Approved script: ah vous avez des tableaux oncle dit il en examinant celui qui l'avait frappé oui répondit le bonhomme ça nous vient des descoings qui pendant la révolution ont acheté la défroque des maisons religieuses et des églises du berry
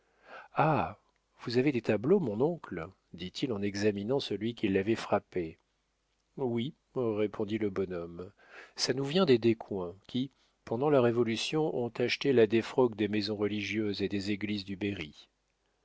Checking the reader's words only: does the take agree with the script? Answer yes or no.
no